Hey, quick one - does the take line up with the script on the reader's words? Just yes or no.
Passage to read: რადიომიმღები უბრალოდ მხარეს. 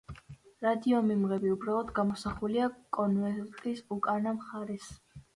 no